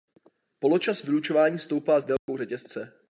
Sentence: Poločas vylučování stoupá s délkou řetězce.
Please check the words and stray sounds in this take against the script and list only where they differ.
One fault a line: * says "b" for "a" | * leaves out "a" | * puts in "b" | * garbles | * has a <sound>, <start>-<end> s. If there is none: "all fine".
* has a dropout, 2.2-2.3 s